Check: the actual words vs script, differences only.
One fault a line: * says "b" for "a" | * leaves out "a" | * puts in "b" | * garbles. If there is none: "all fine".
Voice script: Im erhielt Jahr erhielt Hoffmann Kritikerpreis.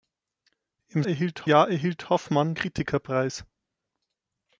all fine